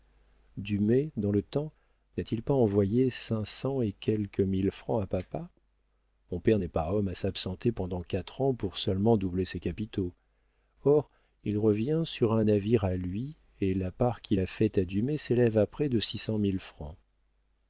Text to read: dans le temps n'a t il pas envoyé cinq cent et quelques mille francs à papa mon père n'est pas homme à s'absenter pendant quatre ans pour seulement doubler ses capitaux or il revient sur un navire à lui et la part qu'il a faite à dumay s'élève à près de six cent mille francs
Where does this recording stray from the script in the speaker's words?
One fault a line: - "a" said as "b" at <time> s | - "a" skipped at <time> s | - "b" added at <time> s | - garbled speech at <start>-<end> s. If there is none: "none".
none